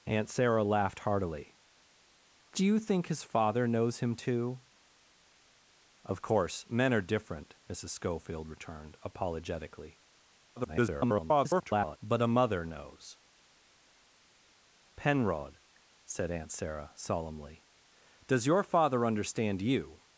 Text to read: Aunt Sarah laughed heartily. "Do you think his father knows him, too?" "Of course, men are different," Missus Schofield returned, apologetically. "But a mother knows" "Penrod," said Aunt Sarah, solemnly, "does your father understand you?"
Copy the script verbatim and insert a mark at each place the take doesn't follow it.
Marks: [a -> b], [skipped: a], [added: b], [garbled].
Aunt Sarah laughed heartily. "Do you think his father knows him, too?" "Of course, men are different," Missus Schofield returned, apologetically. [garbled] "But a mother knows" "Penrod," said Aunt Sarah, solemnly, "does your father understand you?"